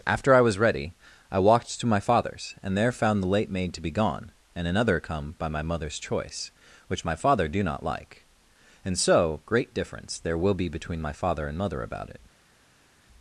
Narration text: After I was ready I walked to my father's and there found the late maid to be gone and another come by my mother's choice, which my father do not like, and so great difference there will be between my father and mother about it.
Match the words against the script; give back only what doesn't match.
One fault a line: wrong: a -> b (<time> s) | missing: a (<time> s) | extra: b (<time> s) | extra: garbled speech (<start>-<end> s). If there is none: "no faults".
no faults